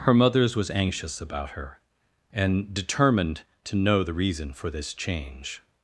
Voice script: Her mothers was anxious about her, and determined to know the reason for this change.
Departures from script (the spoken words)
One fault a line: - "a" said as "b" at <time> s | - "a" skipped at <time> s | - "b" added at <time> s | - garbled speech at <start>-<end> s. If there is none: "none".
none